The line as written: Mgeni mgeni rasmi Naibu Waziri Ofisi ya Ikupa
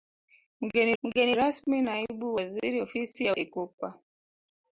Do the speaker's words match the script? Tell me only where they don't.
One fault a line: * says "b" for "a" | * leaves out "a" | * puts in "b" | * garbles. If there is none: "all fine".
all fine